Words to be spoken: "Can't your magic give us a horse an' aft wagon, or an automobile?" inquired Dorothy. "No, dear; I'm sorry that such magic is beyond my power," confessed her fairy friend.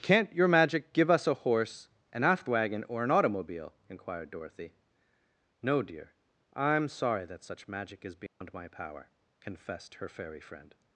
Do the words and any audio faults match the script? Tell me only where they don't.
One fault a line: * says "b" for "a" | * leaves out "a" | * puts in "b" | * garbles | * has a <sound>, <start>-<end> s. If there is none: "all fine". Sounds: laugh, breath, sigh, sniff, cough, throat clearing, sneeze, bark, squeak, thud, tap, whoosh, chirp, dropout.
* has a dropout, 8.3-8.4 s